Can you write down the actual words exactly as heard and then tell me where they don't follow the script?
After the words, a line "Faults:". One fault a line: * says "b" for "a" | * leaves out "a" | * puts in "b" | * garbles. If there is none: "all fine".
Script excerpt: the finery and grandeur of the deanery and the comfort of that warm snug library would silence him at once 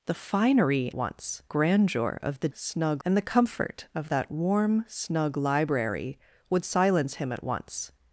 the finery once grandeur of the snug and the comfort of that warm snug library would silence him at once
Faults:
* says "once" for "and"
* says "snug" for "deanery"